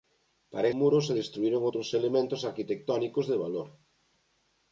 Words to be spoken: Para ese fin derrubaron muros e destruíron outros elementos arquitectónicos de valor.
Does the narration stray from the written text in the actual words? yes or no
yes